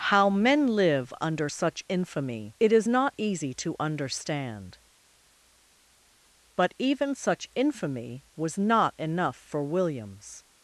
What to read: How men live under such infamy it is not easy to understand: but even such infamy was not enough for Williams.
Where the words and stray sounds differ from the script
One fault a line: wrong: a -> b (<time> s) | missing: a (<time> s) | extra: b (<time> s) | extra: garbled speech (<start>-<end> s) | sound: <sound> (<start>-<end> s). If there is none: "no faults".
no faults